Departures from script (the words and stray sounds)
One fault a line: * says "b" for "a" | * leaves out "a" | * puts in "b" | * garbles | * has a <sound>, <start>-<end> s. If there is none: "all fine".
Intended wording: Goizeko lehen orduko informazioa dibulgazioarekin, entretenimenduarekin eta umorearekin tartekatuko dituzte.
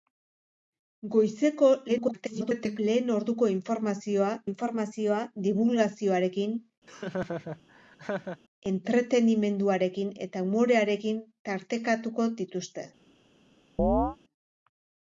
* garbles
* puts in "informazioa"
* has a laugh, 6.9-8.4 s
* has a chirp, 13.8-14.2 s